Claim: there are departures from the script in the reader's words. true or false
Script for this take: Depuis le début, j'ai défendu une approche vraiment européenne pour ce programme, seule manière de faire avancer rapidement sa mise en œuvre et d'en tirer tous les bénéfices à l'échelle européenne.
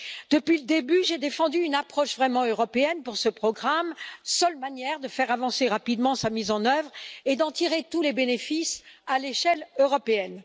false